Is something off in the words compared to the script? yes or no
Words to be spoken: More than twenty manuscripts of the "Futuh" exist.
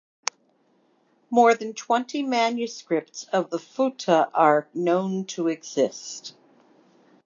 yes